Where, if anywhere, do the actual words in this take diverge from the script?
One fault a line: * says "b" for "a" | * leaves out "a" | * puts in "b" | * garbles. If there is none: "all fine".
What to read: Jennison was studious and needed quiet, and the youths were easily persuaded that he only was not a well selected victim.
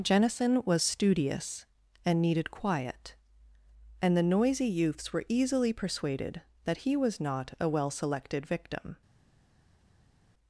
* puts in "noisy"
* leaves out "only"